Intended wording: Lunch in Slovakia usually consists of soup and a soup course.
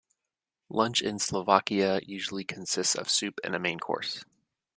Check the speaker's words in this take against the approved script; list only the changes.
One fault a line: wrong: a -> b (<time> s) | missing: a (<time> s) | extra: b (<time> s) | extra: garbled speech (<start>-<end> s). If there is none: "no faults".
wrong: soup -> main (3.6 s)